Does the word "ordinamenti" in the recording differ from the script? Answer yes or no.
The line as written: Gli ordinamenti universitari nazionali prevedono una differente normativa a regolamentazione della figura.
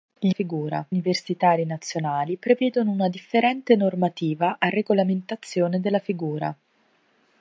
yes